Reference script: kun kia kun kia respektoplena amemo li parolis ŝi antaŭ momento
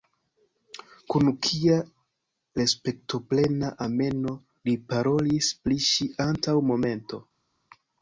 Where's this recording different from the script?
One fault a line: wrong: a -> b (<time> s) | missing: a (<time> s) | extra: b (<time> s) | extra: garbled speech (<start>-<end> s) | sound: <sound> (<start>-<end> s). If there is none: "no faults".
missing: kun kia (1.8 s)
extra: pri (5.7 s)